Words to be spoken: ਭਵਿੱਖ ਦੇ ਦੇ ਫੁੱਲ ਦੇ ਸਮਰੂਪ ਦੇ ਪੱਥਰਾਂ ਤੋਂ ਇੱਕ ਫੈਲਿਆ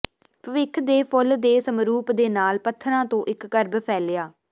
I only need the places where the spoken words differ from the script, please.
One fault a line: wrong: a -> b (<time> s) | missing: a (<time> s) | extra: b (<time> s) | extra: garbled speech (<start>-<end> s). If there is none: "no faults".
missing: ਦੇ (1.0 s)
extra: ਨਾਲ (2.3 s)
extra: ਕਰਬ (3.5 s)